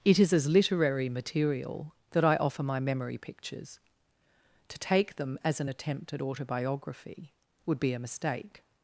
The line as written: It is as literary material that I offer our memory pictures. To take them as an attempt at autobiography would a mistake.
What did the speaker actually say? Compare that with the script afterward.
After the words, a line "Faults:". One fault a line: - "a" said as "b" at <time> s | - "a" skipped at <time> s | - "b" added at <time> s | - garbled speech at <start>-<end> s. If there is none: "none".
It is as literary material that I offer my memory pictures. To take them as an attempt at autobiography would be a mistake.
Faults:
- "our" said as "my" at 2.6 s
- "be" added at 7.8 s